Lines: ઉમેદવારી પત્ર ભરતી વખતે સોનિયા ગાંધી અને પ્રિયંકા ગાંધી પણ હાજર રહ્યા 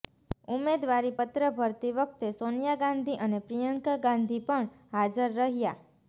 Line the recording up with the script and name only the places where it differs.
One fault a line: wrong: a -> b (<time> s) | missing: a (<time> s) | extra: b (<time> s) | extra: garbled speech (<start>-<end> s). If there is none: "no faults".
no faults